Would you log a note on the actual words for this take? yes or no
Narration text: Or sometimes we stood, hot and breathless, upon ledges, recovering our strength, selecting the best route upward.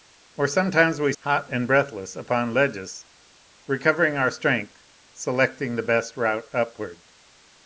yes